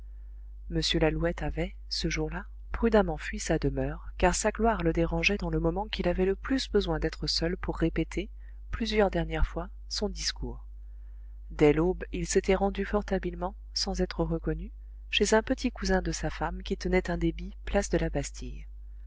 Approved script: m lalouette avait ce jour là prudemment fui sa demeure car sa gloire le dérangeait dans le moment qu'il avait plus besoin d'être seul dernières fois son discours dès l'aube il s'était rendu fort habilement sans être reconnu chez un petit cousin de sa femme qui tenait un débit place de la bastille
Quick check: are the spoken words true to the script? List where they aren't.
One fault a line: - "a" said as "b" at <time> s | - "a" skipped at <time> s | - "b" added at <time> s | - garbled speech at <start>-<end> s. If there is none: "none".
- "le" added at 6.2 s
- "pour répéter plusieurs" added at 7.6 s